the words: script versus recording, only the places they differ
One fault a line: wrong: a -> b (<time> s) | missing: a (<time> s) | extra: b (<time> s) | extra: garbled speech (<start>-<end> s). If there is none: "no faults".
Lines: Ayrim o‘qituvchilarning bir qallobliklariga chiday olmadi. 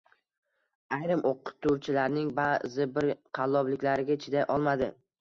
extra: ba'zi (2.4 s)